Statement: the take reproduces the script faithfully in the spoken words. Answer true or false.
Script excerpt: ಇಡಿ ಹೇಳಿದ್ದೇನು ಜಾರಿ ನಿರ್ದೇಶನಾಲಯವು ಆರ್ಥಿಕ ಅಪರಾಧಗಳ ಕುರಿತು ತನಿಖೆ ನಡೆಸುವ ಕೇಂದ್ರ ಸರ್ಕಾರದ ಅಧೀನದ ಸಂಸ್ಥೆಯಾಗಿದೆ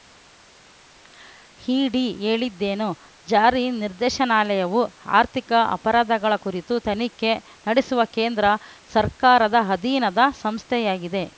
true